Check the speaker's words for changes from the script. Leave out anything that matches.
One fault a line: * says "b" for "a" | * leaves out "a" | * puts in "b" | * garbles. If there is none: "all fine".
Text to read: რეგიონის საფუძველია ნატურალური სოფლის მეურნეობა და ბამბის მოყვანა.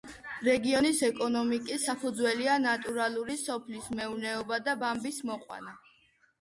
* puts in "ეკონომიკის"